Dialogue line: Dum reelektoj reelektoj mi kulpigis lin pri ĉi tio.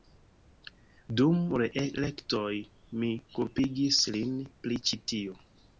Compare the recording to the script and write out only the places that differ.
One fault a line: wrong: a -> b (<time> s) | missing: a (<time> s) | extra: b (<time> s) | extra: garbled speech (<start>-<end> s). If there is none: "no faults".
missing: reelektoj (2.5 s)